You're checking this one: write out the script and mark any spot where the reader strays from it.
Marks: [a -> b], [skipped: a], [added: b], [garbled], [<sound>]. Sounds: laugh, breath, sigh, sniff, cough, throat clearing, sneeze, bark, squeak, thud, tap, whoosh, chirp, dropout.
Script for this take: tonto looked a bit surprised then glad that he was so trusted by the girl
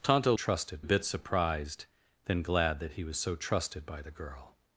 tonto [looked -> trusted] a bit surprised then glad that he was so trusted by the girl